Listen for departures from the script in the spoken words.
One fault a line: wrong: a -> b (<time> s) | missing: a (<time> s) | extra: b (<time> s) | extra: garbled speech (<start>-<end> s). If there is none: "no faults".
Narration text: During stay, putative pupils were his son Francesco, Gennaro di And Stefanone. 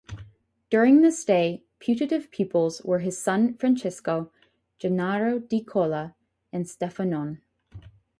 extra: this (1.0 s)
extra: Cola (5.6 s)